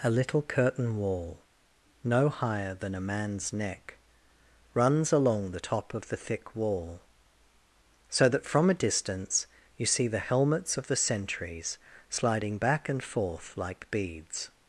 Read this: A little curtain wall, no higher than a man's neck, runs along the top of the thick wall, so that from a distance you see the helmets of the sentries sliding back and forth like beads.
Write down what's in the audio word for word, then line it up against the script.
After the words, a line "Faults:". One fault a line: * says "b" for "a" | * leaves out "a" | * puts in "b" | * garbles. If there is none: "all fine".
A little curtain wall, no higher than a man's neck, runs along the top of the thick wall, so that from a distance you see the helmets of the sentries sliding back and forth like beads.
Faults:
all fine